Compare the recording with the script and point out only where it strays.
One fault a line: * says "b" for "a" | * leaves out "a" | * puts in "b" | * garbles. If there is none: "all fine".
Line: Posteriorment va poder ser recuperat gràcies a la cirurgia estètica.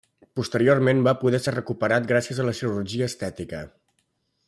all fine